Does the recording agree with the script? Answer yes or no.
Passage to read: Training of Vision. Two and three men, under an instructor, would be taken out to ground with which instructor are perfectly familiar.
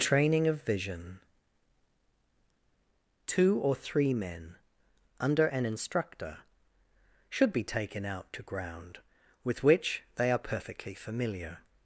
no